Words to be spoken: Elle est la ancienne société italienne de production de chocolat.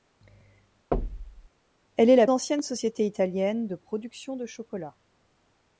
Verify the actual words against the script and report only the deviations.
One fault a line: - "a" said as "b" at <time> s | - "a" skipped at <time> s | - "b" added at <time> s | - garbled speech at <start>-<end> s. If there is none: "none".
none